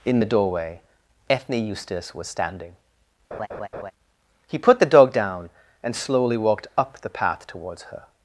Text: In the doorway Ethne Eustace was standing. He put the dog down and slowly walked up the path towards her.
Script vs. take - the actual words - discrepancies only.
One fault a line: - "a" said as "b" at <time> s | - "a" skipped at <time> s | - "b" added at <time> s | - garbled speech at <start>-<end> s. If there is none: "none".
none